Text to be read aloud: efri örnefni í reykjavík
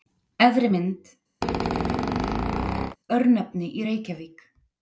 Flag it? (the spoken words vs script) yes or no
yes